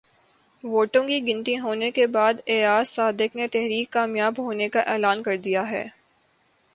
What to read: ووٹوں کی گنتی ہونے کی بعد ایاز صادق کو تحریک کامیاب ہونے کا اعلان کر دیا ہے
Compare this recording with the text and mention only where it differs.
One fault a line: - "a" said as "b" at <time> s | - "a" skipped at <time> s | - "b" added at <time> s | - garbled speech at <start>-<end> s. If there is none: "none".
- "کی" said as "کے" at 1.9 s
- "کو" said as "نے" at 3.3 s